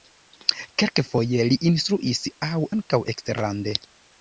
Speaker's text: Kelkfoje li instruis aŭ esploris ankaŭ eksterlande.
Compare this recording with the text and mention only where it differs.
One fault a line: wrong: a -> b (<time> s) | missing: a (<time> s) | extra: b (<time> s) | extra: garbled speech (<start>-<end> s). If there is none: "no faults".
missing: esploris (2.6 s)